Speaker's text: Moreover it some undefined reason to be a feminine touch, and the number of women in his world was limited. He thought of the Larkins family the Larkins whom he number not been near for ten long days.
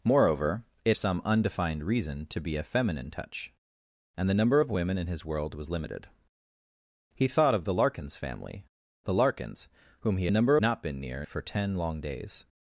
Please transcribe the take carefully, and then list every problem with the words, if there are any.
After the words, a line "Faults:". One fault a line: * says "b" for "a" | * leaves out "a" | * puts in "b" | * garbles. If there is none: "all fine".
Moreover it some undefined reason to be a feminine touch, and the number of women in his world was limited. He thought of the Larkins family the Larkins whom he number not been near for ten long days.
Faults:
all fine